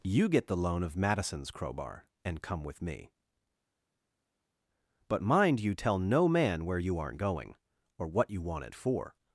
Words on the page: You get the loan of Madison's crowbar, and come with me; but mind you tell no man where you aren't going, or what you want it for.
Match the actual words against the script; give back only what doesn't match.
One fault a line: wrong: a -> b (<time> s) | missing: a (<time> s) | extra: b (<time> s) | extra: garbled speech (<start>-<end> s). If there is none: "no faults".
no faults